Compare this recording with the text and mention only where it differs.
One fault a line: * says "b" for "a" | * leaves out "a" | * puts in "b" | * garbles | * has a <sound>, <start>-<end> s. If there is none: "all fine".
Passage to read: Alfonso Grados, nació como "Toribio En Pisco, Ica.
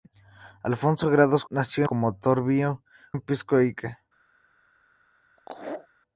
* has a laugh, 5.4-5.9 s